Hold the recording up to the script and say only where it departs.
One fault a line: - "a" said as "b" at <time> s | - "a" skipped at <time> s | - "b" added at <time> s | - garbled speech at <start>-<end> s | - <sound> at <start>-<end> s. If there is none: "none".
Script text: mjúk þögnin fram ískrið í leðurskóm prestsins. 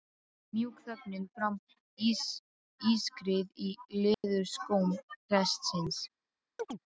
- dropout at 4.1-4.2 s
- chirp at 6.6-6.8 s